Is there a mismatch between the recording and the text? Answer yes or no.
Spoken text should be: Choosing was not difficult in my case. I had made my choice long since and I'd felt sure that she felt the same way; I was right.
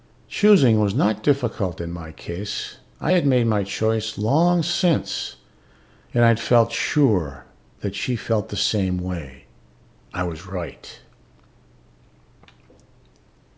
no